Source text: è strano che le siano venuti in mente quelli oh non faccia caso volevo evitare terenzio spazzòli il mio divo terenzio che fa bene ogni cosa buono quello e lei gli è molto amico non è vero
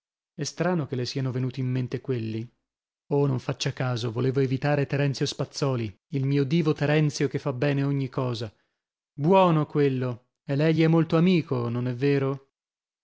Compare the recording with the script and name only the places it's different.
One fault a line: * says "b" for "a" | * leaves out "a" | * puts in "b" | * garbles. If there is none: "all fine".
all fine